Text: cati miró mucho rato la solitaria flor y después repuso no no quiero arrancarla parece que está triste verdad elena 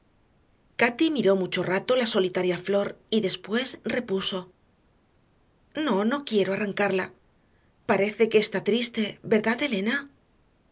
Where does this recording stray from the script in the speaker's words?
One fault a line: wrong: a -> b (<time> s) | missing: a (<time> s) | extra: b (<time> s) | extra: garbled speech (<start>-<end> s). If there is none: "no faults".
no faults